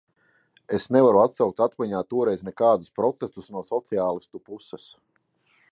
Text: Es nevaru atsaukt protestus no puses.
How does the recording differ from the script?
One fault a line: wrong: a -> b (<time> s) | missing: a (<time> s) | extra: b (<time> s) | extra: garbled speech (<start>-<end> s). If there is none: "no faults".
extra: atmiņā toreiz nekādus (1.6 s)
extra: sociālistu (3.7 s)